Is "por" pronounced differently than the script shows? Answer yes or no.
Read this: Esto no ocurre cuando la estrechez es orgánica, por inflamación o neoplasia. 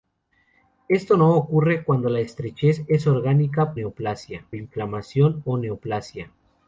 yes